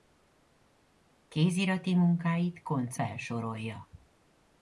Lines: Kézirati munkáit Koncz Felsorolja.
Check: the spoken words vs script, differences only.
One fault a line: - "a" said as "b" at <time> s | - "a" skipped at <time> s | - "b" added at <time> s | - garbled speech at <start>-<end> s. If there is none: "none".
none